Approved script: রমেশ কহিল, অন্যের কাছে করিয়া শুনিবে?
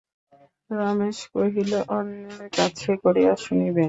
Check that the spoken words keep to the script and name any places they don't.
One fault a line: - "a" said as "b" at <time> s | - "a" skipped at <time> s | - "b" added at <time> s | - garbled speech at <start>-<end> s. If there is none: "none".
none